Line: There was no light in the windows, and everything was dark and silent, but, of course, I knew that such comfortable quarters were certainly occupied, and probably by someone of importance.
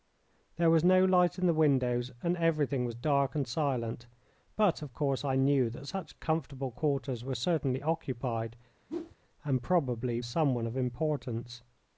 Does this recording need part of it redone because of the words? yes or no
yes